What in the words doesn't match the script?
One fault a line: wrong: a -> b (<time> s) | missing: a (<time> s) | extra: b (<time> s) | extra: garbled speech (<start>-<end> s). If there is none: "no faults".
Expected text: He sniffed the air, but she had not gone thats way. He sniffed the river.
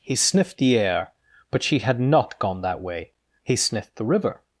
wrong: thats -> that (2.6 s)